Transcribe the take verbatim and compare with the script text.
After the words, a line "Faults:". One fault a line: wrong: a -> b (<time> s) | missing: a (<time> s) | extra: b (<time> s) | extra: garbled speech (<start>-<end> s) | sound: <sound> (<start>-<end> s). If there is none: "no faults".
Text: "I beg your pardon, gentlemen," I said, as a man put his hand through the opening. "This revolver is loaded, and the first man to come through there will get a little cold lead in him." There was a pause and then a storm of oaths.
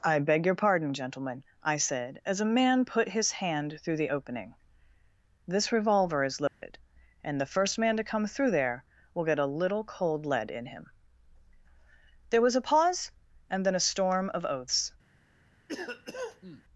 "I beg your pardon, gentlemen," I said, as a man put his hand through the opening. "This revolver is loaded, and the first man to come through there will get a little cold lead in him." There was a pause and then a storm of oaths.
Faults:
sound: dropout (6.5-6.6 s)
sound: cough (15.7-16.6 s)